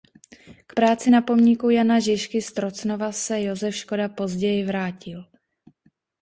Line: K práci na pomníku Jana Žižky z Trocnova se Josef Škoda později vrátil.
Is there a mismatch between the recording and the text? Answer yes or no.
no